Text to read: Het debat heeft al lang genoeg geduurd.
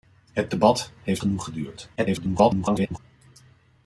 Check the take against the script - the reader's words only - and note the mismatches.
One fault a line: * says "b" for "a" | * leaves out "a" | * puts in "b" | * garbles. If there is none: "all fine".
* leaves out "al lang"
* garbles